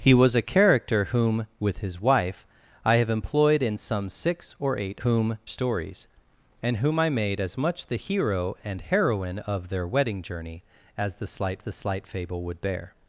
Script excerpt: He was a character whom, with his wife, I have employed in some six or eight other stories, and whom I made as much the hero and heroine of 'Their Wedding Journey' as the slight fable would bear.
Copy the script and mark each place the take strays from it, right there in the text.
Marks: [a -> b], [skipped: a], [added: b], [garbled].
He was a character whom, with his wife, I have employed in some six or eight [other -> whom] stories, and whom I made as much the hero and heroine of 'Their Wedding Journey' as the slight [added: the slight] fable would bear.